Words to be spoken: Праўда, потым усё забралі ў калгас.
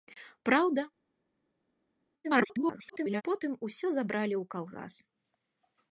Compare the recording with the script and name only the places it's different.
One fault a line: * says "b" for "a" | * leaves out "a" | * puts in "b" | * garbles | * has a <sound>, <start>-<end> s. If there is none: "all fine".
* garbles